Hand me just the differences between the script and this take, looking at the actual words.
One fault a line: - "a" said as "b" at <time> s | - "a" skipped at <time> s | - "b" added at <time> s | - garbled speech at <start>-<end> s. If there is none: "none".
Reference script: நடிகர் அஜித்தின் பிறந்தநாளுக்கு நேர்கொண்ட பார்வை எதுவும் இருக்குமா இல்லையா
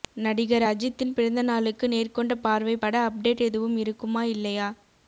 - "பட அப்டேட்" added at 2.8 s